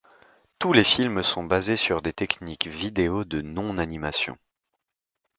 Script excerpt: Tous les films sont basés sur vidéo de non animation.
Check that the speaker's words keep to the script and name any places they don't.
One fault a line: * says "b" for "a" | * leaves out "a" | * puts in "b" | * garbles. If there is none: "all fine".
* puts in "des techniques"